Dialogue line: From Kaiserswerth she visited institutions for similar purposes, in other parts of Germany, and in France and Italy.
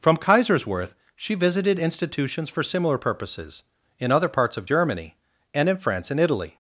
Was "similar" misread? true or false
false